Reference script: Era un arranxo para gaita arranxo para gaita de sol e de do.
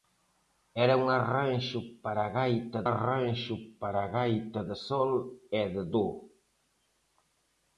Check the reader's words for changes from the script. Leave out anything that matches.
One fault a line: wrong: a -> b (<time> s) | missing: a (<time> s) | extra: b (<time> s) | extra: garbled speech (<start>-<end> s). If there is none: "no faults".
no faults